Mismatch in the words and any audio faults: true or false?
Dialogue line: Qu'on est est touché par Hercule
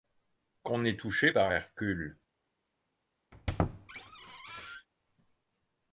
true